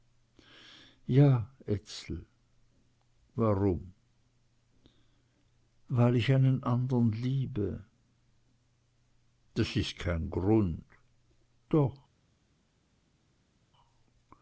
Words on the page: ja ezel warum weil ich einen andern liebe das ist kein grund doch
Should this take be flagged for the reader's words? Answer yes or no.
no